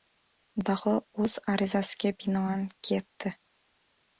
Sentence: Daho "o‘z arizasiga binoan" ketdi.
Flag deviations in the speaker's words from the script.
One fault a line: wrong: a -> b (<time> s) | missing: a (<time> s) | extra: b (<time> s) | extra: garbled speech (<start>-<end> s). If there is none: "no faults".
no faults